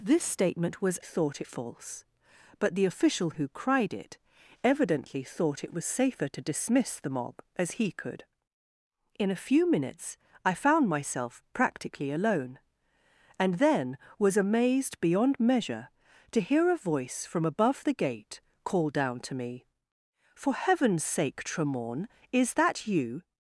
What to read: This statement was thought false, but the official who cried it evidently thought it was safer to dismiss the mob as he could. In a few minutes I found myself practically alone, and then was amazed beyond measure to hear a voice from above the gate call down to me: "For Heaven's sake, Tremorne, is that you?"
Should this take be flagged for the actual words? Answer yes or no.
no